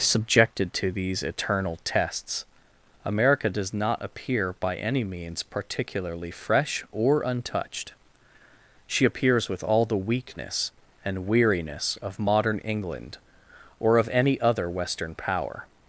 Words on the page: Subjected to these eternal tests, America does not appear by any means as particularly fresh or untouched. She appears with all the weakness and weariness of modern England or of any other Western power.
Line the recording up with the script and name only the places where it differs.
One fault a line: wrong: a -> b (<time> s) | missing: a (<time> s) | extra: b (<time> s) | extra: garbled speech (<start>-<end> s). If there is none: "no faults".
missing: as (5.4 s)